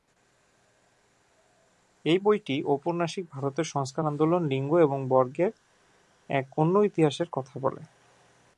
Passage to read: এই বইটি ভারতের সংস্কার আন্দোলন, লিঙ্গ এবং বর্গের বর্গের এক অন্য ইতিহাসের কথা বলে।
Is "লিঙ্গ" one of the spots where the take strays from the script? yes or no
no